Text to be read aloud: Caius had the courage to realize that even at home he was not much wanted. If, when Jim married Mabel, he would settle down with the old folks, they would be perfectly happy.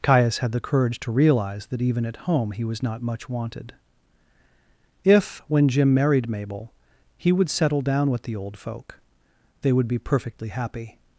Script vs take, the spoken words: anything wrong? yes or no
yes